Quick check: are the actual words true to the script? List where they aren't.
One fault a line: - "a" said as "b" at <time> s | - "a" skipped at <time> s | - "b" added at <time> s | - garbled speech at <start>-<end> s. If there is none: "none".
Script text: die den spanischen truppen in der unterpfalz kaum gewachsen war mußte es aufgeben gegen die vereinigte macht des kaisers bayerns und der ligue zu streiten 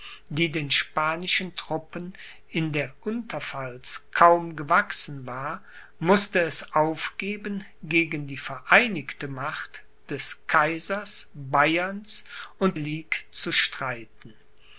- "der" skipped at 12.8 s